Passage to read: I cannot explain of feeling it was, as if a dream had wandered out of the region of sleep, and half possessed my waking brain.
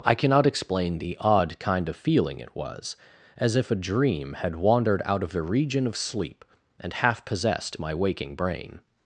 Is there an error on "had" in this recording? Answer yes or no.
no